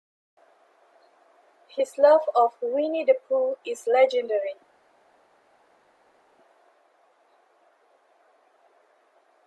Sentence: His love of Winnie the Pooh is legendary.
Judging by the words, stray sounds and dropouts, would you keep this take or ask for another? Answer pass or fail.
pass